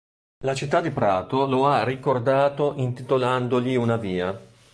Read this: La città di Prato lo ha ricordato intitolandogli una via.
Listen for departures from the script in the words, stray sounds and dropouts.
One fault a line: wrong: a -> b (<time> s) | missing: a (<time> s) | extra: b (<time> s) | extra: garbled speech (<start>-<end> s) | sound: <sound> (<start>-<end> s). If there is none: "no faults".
no faults